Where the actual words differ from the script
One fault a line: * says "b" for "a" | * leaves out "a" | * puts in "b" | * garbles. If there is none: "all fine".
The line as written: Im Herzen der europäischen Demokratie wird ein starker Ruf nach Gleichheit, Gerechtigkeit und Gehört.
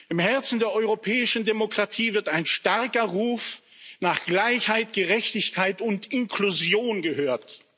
* puts in "Inklusion"